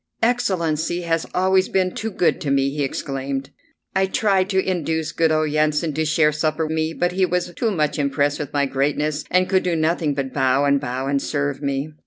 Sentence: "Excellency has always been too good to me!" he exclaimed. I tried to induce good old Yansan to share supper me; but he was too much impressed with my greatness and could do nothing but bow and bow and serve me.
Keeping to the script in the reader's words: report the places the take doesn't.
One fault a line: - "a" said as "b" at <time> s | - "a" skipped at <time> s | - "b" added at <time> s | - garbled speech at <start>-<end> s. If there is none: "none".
none